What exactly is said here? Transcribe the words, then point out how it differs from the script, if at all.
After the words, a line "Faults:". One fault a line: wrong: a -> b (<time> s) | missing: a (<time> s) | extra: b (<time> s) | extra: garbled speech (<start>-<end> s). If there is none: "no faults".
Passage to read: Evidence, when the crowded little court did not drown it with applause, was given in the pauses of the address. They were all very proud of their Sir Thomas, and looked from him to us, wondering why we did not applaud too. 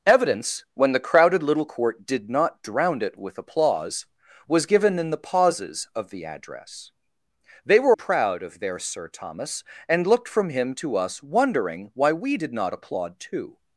Evidence, when the crowded little court did not drown it with applause, was given in the pauses of the address. They were proud of their Sir Thomas, and looked from him to us, wondering why we did not applaud too.
Faults:
missing: all very (8.0 s)